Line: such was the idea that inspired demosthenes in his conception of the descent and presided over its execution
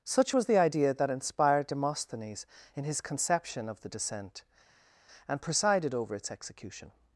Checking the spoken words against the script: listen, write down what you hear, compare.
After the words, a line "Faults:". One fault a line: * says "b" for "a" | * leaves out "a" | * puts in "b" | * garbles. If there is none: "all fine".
such was the idea that inspired demosthenes in his conception of the descent and presided over its execution
Faults:
all fine